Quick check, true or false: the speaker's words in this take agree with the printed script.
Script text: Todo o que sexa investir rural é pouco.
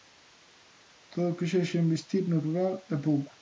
false